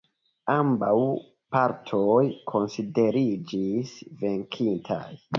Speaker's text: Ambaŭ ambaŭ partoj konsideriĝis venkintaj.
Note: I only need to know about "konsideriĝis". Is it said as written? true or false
true